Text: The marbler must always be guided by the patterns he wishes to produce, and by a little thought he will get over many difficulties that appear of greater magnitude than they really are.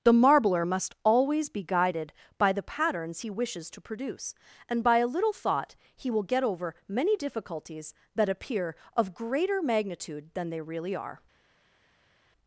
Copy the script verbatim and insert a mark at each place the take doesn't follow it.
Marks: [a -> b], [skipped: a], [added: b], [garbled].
The marbler must always be guided by the patterns he wishes to produce, and by a little thought he will get over many difficulties that appear of greater magnitude than they really are.